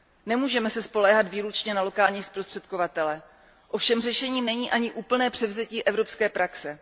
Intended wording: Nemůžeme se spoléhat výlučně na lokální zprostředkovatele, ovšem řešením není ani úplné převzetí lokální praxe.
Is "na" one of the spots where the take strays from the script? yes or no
no